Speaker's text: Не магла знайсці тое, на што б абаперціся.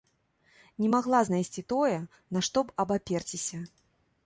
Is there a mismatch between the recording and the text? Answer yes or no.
no